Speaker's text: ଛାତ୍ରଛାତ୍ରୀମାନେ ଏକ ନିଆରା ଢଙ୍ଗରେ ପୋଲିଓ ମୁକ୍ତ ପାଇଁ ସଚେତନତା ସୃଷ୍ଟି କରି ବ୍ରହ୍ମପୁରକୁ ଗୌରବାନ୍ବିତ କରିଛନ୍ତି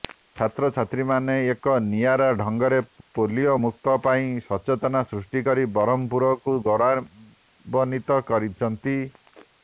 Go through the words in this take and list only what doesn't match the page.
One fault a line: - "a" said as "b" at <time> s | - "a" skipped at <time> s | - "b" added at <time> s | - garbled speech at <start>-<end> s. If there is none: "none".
none